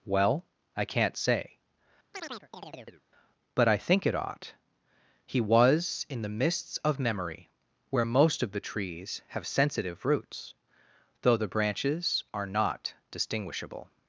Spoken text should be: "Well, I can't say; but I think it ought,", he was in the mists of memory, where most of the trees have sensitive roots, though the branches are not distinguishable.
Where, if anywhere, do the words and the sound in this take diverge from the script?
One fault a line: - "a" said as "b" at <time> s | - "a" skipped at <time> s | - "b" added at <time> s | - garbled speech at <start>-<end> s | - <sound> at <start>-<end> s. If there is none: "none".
- chirp at 2.1-3.0 s